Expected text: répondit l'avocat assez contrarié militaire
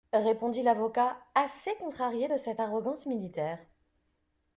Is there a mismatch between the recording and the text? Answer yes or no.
yes